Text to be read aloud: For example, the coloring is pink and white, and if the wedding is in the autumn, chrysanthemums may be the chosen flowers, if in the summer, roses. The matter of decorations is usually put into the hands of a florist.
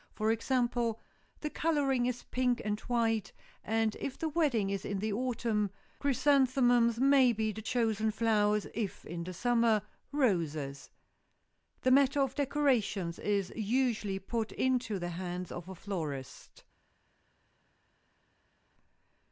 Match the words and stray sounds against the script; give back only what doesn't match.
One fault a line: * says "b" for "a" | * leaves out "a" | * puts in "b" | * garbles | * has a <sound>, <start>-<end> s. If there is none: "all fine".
all fine